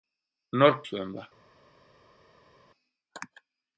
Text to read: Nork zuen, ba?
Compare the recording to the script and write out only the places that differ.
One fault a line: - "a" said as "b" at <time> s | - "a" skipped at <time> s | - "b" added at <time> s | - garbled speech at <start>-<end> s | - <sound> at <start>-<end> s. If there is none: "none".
none